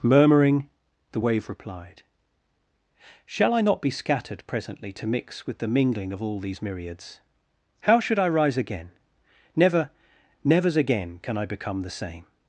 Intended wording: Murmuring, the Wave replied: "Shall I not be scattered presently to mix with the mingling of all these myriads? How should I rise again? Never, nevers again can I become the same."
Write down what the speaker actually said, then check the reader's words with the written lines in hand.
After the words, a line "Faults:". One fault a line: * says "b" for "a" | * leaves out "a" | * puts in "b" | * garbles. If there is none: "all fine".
Murmuring, the Wave replied: "Shall I not be scattered presently to mix with the mingling of all these myriads? How should I rise again? Never, nevers again can I become the same."
Faults:
all fine